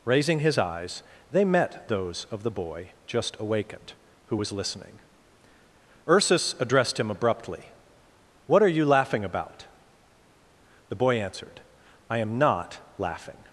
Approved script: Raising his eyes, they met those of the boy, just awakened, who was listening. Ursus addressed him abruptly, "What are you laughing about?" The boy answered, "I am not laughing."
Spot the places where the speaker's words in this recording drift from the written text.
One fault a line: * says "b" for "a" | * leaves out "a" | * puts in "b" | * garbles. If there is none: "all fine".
all fine